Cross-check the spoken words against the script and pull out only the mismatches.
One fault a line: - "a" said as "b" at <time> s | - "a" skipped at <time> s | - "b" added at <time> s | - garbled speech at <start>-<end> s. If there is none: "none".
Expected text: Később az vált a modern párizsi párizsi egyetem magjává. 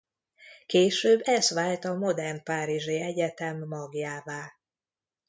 - "az" said as "ez" at 1.2 s
- "párizsi" skipped at 3.0 s